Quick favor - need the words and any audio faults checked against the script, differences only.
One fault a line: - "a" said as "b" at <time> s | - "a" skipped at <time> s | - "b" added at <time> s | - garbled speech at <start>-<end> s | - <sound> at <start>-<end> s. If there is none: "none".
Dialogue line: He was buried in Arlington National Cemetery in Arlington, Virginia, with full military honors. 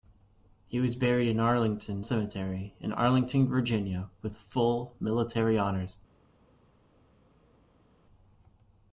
- "National" skipped at 2.0 s